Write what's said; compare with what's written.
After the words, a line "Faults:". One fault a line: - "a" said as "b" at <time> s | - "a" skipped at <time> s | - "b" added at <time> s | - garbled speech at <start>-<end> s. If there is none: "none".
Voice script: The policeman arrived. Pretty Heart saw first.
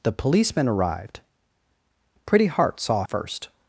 The policeman arrived. Pretty Heart saw first.
Faults:
none